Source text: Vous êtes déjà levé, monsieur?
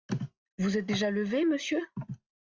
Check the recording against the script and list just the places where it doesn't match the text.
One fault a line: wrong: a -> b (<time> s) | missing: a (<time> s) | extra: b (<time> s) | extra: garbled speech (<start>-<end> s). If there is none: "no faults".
no faults